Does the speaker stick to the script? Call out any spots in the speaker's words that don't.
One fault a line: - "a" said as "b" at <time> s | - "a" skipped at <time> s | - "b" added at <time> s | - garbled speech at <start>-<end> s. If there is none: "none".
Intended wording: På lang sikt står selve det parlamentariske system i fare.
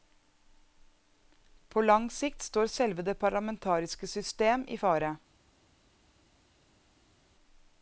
none